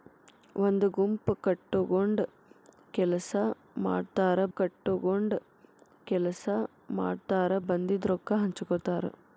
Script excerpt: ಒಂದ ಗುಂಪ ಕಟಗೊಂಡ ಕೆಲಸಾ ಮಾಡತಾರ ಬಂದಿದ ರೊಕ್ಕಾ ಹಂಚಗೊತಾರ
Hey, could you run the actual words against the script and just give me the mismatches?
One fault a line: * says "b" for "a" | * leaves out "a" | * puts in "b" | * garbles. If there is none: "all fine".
* puts in "ಕಟಗೊಂಡ ಕೆಲಸಾ ಮಾಡತಾರ"